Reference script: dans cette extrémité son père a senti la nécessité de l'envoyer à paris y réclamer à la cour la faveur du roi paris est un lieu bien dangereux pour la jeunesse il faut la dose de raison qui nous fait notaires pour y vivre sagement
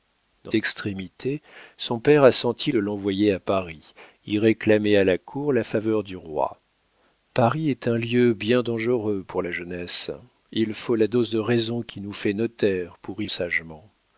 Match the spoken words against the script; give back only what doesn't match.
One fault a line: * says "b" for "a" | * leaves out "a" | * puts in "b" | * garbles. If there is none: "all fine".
* leaves out "cette"
* leaves out "la nécessité"
* leaves out "vivre"